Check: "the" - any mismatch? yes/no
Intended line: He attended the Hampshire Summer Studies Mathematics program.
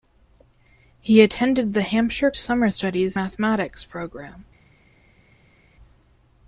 no